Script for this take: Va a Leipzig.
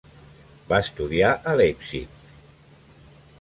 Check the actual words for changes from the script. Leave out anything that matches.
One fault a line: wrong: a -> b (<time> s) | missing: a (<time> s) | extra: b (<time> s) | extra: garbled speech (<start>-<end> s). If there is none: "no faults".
extra: estudiar (0.8 s)